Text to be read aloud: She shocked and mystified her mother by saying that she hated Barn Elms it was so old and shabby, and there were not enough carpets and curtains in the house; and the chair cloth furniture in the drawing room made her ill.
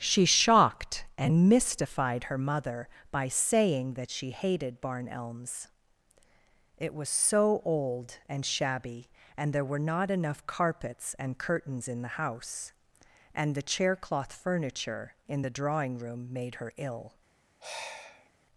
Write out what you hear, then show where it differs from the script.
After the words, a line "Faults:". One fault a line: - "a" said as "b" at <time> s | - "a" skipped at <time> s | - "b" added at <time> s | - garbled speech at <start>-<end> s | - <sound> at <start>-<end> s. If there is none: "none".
She shocked and mystified her mother by saying that she hated Barn Elms it was so old and shabby, and there were not enough carpets and curtains in the house; and the chair cloth furniture in the drawing room made her ill.
Faults:
- sigh at 17.6-18.3 s